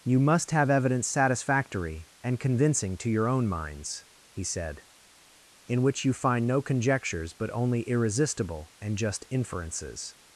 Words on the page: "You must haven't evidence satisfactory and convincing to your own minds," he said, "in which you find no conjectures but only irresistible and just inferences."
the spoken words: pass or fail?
fail